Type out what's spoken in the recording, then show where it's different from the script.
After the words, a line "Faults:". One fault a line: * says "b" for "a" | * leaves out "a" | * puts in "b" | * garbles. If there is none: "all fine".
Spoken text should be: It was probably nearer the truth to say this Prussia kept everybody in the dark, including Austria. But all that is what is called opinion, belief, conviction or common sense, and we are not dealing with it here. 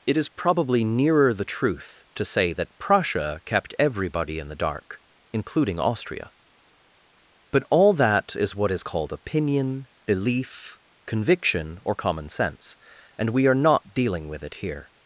It is probably nearer the truth to say that Prussia kept everybody in the dark, including Austria. But all that is what is called opinion, belief, conviction or common sense, and we are not dealing with it here.
Faults:
* says "is" for "was"
* says "that" for "this"